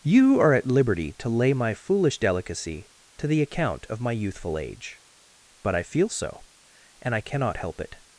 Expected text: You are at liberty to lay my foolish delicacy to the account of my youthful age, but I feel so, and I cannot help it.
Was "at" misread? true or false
false